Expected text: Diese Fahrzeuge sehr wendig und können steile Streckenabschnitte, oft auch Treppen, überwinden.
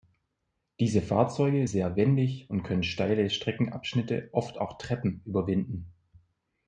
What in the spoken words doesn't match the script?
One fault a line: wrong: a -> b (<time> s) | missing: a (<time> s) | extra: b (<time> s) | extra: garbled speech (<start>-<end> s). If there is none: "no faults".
no faults